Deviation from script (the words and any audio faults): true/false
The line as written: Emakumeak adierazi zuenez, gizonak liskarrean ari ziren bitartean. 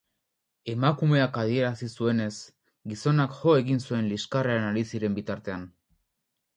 true